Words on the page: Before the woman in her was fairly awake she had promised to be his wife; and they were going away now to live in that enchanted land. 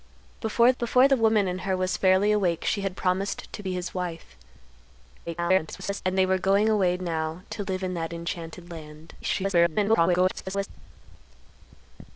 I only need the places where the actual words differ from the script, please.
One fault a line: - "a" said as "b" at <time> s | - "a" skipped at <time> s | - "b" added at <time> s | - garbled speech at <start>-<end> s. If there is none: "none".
- "before" added at 0.8 s
- garbled speech at 5.3-6.0 s
- garbled speech at 9.2-10.7 s